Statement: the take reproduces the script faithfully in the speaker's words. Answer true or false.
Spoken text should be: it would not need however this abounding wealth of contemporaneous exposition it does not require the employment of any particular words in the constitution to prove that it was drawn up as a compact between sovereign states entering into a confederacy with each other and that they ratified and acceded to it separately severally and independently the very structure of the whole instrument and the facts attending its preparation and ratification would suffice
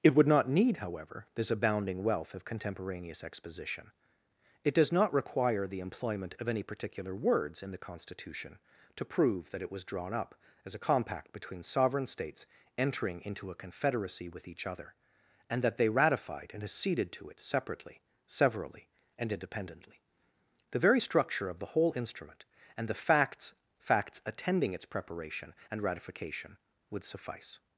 false